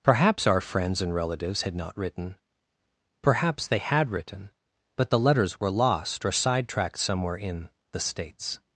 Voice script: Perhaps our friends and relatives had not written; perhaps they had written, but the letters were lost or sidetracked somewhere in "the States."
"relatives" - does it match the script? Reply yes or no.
yes